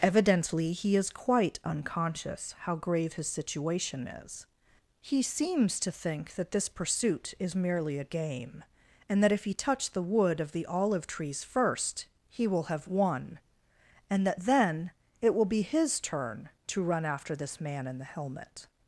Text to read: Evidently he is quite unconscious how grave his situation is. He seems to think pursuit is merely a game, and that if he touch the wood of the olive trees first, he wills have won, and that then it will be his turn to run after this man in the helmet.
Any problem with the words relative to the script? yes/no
yes